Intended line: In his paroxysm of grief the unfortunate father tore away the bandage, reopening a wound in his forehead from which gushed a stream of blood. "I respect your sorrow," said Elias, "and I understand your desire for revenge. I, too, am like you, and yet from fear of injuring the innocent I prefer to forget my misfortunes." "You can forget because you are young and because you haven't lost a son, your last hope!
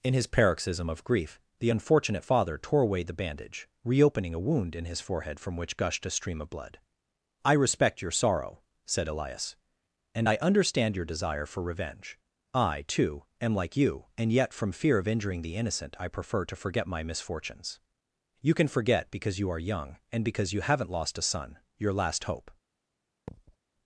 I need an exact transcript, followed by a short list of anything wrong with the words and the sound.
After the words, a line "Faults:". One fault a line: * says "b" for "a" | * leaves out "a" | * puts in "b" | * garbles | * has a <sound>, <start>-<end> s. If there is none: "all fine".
In his paroxysm of grief the unfortunate father tore away the bandage, reopening a wound in his forehead from which gushed a stream of blood. "I respect your sorrow," said Elias, "and I understand your desire for revenge. I, too, am like you, and yet from fear of injuring the innocent I prefer to forget my misfortunes." "You can forget because you are young and because you haven't lost a son, your last hope!
Faults:
* has a thud, 23.3-23.6 s